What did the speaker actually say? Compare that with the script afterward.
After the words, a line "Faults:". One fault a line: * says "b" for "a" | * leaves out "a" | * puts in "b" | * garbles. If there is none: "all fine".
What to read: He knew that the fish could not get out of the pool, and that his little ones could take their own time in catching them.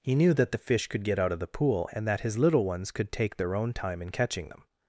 He knew that the fish could get out of the pool, and that his little ones could take their own time in catching them.
Faults:
* leaves out "not"